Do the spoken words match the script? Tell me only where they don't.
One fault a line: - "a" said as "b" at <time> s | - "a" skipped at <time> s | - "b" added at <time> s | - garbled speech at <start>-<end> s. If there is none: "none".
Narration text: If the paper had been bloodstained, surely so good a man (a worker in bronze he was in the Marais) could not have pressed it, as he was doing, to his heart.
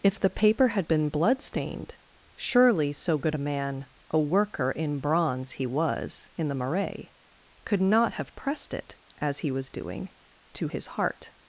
none